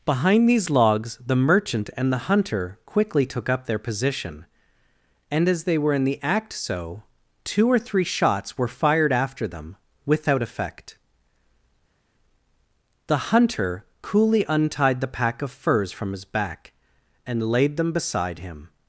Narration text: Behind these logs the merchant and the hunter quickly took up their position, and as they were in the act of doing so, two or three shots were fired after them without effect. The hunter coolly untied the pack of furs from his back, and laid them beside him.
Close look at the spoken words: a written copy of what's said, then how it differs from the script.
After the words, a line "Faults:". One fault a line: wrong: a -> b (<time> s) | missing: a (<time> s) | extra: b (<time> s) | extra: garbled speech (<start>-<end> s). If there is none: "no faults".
Behind these logs the merchant and the hunter quickly took up their position, and as they were in the act so, two or three shots were fired after them without effect. The hunter coolly untied the pack of furs from his back, and laid them beside him.
Faults:
missing: of doing (6.5 s)